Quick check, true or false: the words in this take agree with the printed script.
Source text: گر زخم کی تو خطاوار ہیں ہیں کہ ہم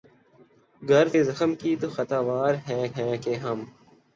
true